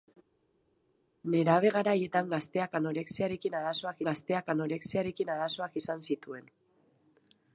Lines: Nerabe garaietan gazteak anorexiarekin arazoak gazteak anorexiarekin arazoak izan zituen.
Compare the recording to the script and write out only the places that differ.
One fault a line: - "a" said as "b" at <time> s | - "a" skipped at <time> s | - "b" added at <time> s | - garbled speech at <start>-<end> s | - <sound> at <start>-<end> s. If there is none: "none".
none